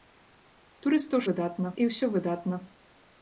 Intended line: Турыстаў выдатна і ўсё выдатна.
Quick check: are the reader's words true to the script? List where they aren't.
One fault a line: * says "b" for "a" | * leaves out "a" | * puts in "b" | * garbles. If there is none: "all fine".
all fine